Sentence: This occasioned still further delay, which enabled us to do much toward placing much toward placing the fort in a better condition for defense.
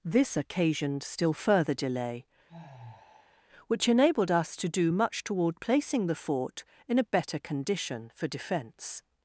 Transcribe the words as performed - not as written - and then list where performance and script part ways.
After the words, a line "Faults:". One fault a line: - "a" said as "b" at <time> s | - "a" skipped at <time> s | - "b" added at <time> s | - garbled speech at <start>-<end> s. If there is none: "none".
This occasioned still further delay, which enabled us to do much toward placing the fort in a better condition for defense.
Faults:
- "much toward placing" skipped at 6.1 s